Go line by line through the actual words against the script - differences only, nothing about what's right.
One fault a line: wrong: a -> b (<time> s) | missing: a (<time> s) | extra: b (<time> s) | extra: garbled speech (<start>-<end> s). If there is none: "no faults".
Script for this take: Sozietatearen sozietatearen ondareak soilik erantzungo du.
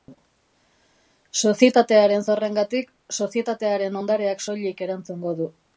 extra: zorrengatik (2.3 s)